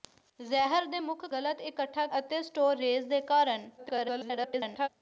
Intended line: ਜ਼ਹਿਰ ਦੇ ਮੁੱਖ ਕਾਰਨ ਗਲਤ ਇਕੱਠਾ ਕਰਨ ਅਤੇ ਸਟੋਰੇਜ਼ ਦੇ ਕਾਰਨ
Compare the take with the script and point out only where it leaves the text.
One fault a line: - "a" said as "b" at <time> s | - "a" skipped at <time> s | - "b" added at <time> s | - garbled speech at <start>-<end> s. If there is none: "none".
- "ਕਾਰਨ" skipped at 1.3 s
- "ਕਰਨ" skipped at 2.1 s
- garbled speech at 3.8-4.9 s